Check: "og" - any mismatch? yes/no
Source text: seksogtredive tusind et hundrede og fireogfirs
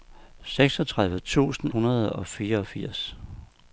no